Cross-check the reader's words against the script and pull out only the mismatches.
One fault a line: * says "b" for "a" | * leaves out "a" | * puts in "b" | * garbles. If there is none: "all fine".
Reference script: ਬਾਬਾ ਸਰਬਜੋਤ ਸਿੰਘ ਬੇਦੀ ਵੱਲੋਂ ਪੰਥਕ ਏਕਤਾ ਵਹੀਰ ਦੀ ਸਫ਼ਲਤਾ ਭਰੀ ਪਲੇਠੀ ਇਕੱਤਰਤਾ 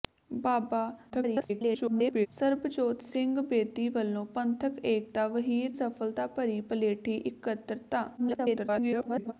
* garbles
* leaves out "ਦੀ"
* garbles